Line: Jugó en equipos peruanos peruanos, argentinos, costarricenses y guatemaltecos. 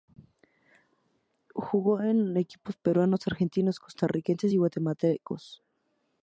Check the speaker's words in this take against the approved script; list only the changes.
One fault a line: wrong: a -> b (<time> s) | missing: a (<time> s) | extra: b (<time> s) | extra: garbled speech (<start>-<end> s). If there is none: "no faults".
missing: peruanos (3.3 s)